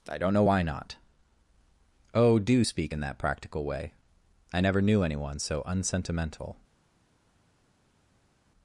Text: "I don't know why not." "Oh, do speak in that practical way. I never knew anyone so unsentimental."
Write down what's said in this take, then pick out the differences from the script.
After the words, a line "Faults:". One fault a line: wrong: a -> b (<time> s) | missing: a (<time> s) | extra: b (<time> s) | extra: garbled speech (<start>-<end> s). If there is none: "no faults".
"I don't know why not." "Oh, do speak in that practical way. I never knew anyone so unsentimental."
Faults:
no faults